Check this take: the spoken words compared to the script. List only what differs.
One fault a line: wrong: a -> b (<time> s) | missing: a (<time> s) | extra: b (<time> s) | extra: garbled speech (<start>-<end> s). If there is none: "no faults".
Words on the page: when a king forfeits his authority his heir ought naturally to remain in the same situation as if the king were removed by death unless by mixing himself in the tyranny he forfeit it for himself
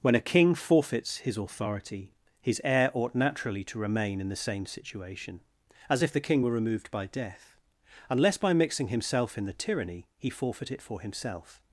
no faults